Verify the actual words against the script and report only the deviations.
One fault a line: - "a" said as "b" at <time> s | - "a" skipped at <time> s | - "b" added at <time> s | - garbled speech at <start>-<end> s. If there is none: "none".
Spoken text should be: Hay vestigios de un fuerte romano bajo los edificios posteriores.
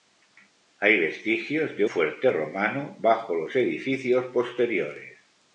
- "un" skipped at 1.9 s